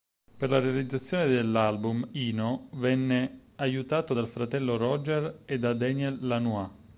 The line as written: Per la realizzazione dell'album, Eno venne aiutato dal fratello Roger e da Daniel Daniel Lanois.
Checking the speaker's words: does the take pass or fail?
fail